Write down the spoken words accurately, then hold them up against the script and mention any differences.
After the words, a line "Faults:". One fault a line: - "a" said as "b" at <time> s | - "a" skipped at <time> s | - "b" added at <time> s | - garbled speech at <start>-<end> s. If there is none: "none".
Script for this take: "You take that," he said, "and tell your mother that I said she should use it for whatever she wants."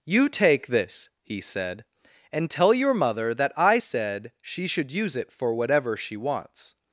"You take this," he said, "and tell your mother that I said she should use it for whatever she wants."
Faults:
- "that" said as "this" at 0.7 s